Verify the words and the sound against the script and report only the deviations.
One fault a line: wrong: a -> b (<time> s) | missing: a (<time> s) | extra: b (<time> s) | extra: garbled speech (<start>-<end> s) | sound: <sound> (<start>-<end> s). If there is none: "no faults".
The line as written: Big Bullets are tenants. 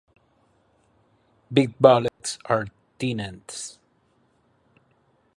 sound: dropout (2.1-2.2 s)